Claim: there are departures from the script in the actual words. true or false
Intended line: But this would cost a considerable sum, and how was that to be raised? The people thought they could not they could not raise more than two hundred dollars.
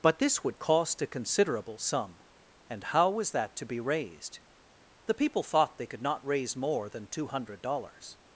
true